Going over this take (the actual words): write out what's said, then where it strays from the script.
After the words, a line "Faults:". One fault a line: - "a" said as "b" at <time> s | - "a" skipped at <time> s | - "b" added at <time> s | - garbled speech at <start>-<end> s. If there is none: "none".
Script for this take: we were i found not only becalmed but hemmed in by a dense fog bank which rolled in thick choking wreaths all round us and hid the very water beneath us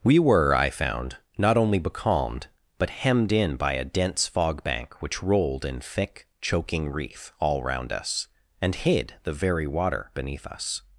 we were i found not only becalmed but hemmed in by a dense fog bank which rolled in thick choking wreath all round us and hid the very water beneath us
Faults:
- "wreaths" said as "wreath" at 6.9 s